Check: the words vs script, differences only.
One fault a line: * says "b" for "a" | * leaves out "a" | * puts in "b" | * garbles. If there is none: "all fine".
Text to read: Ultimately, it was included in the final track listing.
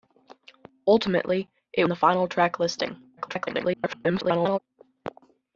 * leaves out "was included in"
* garbles